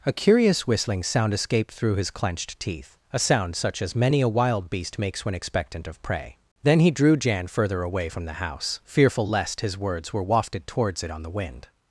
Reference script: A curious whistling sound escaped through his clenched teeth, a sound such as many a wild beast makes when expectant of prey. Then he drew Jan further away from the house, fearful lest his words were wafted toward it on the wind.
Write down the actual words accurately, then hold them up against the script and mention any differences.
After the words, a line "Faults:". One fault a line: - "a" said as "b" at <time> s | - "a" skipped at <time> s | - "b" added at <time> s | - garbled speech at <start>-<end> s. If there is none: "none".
A curious whistling sound escaped through his clenched teeth, a sound such as many a wild beast makes when expectant of prey. Then he drew Jan further away from the house, fearful lest his words were wafted towards it on the wind.
Faults:
- "toward" said as "towards" at 10.7 s